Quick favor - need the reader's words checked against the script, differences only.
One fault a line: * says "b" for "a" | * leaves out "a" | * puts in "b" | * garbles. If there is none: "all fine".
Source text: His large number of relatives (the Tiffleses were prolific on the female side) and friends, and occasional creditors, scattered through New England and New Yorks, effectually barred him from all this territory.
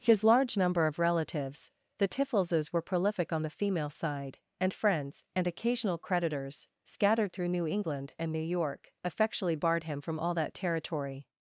* says "York" for "Yorks"
* says "that" for "this"